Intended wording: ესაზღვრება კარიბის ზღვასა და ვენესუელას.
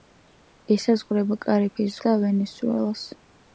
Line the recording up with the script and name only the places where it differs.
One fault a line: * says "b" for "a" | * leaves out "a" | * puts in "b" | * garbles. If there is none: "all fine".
* leaves out "ზღვასა"